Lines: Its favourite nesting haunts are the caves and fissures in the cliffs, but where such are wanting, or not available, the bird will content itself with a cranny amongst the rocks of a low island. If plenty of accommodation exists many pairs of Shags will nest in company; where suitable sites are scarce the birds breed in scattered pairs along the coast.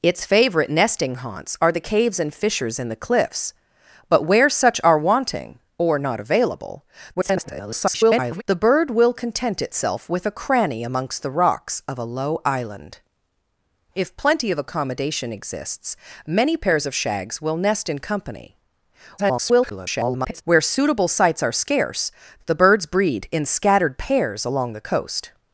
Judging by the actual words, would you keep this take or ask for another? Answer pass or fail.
fail